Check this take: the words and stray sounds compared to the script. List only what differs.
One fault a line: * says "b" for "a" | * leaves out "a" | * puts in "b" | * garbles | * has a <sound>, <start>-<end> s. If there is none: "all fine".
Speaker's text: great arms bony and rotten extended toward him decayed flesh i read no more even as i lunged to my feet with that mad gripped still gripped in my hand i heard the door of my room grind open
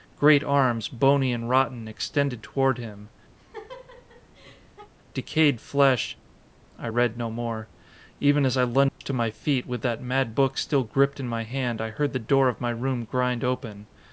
* has a laugh, 3.4-4.9 s
* has a dropout, 8.9-9.0 s
* says "book" for "gripped"